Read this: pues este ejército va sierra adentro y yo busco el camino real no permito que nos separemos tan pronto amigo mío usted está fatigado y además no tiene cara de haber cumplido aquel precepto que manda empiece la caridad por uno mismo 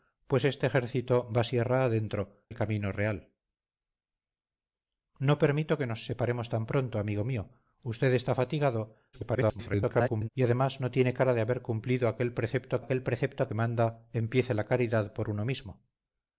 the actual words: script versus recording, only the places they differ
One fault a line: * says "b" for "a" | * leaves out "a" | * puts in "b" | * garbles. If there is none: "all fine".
* leaves out "y yo busco"
* garbles
* puts in "aquel precepto"